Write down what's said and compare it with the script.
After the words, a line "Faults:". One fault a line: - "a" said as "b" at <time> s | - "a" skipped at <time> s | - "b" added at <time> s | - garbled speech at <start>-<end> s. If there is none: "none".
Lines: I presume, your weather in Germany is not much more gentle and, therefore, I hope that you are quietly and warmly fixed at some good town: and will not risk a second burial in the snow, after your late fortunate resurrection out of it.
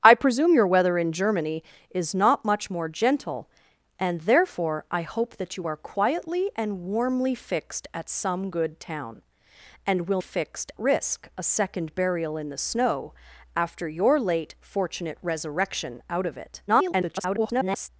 I presume, your weather in Germany is not much more gentle and, therefore, I hope that you are quietly and warmly fixed at some good town: and will fixed risk a second burial in the snow, after your late fortunate resurrection out of it. [garbled]
Faults:
- "not" said as "fixed" at 10.2 s
- garbled speech at 16.7-17.9 s